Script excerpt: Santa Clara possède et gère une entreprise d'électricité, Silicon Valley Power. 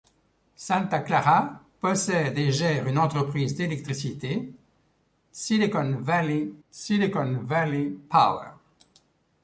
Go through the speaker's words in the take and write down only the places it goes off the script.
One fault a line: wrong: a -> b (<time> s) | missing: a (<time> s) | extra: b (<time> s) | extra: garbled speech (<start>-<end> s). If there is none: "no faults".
extra: Silicon Valley (6.7 s)